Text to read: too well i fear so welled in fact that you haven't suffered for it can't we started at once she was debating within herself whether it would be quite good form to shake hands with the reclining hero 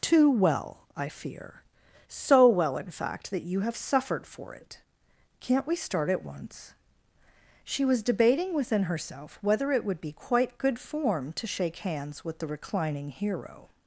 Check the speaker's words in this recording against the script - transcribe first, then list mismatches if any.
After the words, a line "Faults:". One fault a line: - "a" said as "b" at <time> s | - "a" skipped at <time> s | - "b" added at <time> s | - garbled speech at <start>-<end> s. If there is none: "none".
too well i fear so well in fact that you have suffered for it can't we start at once she was debating within herself whether it would be quite good form to shake hands with the reclining hero
Faults:
- "welled" said as "well" at 2.5 s
- "haven't" said as "have" at 3.6 s
- "started" said as "start" at 5.8 s